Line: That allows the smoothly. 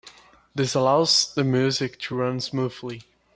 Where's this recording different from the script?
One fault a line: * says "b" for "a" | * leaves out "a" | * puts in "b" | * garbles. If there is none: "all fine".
* says "This" for "That"
* puts in "music to run"